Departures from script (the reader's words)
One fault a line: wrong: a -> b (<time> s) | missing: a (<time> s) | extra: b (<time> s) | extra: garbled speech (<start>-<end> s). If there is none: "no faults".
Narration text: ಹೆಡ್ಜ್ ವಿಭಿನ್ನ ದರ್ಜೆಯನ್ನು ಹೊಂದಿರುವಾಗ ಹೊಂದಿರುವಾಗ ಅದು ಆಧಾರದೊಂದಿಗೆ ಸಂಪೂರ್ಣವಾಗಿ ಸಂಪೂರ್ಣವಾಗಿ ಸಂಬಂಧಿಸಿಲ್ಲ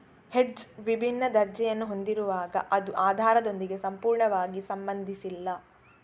missing: ಹೊಂದಿರುವಾಗ (2.6 s)
missing: ಸಂಪೂರ್ಣವಾಗಿ (4.6 s)